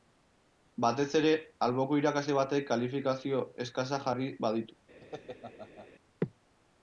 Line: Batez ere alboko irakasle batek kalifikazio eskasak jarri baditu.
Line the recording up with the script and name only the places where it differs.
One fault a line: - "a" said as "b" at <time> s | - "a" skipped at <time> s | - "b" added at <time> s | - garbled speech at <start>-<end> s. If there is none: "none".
none